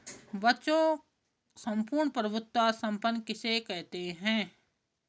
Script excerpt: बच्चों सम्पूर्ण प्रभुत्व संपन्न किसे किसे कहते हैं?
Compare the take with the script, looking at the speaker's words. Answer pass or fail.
fail